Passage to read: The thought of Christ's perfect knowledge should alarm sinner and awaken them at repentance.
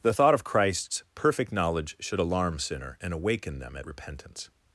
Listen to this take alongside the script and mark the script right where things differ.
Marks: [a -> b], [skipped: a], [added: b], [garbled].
The thought of Christ's perfect knowledge should alarm sinner and awaken them at repentance.